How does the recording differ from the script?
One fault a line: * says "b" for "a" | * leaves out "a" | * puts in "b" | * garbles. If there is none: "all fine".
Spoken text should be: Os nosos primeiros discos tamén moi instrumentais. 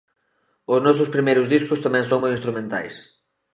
* puts in "son"